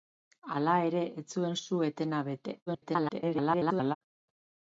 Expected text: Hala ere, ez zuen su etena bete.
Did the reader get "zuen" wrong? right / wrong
right